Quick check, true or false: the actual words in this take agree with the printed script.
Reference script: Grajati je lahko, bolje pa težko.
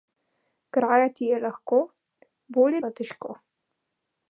true